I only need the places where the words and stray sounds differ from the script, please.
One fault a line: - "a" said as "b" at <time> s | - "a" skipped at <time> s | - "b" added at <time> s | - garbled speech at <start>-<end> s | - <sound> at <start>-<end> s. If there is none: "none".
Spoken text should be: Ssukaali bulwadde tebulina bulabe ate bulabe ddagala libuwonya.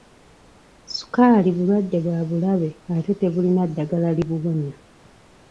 - "tebulina" said as "bwa" at 2.0 s
- "bulabe" said as "tebulina" at 3.2 s